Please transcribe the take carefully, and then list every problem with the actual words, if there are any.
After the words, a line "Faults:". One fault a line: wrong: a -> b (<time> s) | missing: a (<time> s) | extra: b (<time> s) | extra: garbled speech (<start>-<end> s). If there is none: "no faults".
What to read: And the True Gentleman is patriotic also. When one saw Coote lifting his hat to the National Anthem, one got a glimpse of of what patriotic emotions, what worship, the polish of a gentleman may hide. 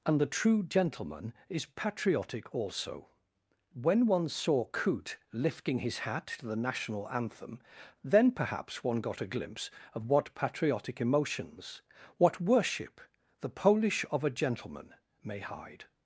And the True Gentleman is patriotic also. When one saw Coote lifting his hat to the National Anthem, then perhaps one got a glimpse of what patriotic emotions, what worship, the polish of a gentleman may hide.
Faults:
extra: then perhaps (8.0 s)
missing: of (10.1 s)